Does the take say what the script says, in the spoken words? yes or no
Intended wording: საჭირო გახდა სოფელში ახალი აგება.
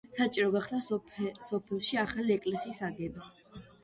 no